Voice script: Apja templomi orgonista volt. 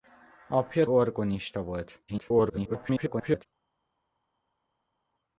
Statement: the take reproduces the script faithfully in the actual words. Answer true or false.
false